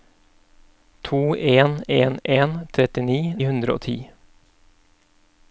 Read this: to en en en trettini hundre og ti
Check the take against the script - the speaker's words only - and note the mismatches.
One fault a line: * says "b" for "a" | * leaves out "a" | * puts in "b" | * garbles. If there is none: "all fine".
all fine